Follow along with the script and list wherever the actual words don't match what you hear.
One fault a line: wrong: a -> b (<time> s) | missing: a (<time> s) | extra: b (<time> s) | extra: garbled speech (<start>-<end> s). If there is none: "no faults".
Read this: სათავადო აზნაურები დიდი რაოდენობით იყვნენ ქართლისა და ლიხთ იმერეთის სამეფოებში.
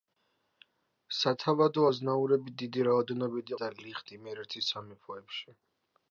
missing: იყვნენ ქართლისა (3.5 s)